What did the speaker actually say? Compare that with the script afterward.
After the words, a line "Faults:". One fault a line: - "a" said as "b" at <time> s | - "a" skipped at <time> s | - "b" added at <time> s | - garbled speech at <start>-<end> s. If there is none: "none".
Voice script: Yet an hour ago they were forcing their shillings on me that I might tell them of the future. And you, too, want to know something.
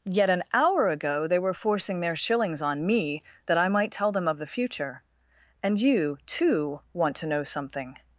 Yet an hour ago they were forcing their shillings on me that I might tell them of the future. And you, too, want to know something.
Faults:
none